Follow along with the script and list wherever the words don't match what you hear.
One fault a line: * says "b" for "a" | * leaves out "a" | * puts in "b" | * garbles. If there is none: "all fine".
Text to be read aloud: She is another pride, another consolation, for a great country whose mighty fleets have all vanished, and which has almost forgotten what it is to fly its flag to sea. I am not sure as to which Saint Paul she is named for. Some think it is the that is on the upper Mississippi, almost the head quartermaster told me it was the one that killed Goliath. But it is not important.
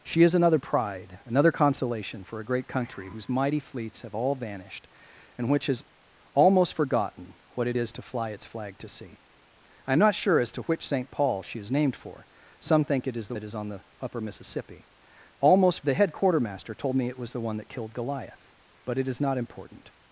all fine